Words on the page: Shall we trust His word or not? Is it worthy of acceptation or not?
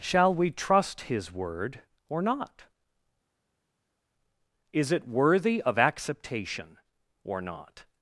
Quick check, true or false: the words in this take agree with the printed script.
true